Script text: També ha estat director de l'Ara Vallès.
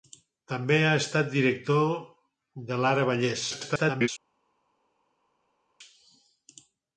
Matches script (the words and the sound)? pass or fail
fail